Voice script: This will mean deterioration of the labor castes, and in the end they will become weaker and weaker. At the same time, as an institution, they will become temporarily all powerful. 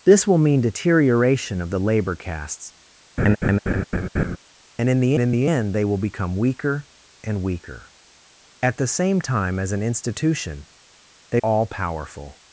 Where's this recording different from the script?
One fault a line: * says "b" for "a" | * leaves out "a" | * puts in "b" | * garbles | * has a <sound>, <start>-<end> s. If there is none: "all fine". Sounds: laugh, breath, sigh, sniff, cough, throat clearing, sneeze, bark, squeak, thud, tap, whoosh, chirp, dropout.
* has a laugh, 3.2-4.4 s
* puts in "in the"
* leaves out "will become temporarily"